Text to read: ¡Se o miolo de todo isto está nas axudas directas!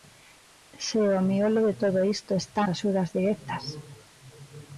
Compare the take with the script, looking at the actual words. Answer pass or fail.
fail